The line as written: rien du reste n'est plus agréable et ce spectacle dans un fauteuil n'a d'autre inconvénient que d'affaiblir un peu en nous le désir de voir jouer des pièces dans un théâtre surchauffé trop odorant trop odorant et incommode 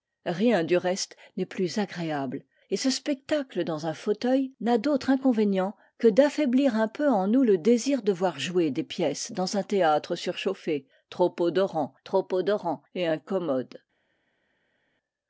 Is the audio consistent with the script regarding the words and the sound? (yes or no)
yes